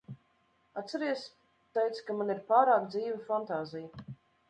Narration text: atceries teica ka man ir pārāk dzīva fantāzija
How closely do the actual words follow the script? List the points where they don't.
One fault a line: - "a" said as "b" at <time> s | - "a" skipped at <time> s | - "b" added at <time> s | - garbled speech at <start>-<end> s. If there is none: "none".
none